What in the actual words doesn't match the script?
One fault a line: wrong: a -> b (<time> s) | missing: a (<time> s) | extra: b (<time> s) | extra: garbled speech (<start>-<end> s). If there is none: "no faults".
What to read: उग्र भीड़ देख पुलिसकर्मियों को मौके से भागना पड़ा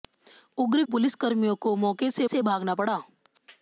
missing: भीड़ देख (0.8 s)
extra: से (2.3 s)